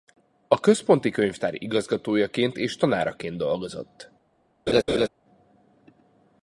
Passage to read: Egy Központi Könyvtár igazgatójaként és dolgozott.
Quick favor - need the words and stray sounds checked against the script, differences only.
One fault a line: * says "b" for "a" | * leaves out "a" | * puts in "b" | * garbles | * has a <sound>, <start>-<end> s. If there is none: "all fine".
* says "A" for "Egy"
* puts in "tanáraként"
* has a laugh, 4.7-5.1 s